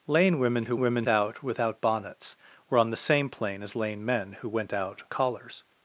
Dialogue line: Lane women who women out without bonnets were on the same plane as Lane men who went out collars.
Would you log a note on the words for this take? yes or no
no